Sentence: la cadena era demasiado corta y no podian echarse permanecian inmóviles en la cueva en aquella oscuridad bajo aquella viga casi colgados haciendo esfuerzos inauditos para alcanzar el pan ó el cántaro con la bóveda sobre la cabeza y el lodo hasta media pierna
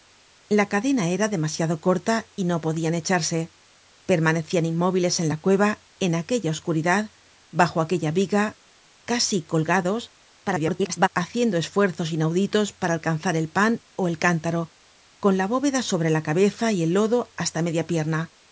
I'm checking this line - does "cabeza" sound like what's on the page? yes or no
yes